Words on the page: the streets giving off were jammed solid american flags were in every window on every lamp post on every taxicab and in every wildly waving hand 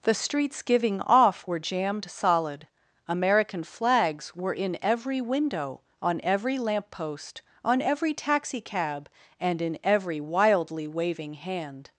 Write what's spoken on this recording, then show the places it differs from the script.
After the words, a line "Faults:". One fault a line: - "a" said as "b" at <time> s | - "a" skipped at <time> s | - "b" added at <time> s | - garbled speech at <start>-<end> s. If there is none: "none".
the streets giving off were jammed solid american flags were in every window on every lamp post on every taxicab and in every wildly waving hand
Faults:
none